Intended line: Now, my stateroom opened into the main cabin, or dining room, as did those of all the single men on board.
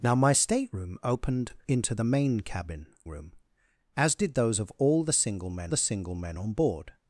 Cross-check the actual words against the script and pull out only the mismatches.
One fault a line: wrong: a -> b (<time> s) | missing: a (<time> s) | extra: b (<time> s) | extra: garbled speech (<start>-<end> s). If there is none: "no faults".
missing: or dining (2.9 s)
extra: the single men (5.7 s)